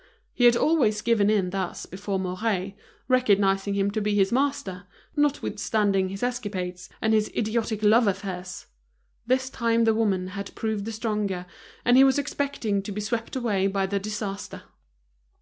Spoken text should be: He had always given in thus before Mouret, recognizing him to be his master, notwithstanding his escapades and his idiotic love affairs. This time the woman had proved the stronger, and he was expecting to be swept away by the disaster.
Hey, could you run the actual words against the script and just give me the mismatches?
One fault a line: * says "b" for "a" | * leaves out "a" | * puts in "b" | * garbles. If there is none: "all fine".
all fine